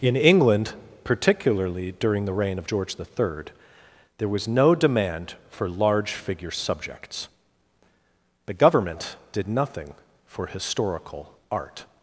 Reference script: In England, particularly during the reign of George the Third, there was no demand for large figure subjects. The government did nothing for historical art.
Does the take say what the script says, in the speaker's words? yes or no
yes